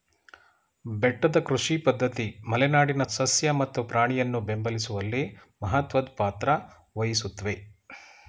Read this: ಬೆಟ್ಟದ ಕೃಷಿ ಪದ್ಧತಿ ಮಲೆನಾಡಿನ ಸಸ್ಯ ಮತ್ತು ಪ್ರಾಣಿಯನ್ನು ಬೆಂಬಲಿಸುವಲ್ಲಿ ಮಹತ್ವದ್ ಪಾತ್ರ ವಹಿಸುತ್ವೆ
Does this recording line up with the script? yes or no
yes